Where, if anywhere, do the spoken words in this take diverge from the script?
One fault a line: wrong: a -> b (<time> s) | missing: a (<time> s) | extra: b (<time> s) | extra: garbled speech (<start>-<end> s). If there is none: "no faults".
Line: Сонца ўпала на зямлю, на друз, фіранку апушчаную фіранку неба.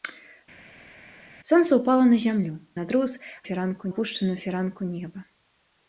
no faults